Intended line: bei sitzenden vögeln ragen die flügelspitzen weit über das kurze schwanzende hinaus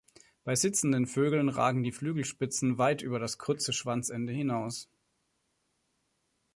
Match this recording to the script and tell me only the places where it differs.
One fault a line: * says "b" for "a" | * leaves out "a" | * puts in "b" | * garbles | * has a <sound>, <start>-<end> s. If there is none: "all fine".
all fine